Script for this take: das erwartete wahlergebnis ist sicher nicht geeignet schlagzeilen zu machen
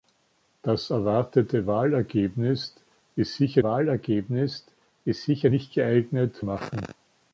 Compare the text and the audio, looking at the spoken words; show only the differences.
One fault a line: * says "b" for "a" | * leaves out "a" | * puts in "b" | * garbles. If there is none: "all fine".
* puts in "wahlergebnis ist sicher"
* leaves out "schlagzeilen zu"